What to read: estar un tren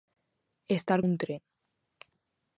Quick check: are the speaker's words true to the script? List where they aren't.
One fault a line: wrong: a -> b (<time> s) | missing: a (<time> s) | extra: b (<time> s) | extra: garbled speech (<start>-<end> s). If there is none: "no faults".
no faults